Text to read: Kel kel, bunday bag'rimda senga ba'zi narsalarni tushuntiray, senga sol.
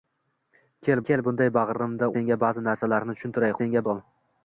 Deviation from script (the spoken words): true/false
false